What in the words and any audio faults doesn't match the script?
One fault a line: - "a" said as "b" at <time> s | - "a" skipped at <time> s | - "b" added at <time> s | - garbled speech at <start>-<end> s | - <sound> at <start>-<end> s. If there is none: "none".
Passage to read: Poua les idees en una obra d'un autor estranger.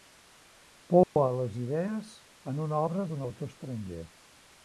- dropout at 1.0-1.2 s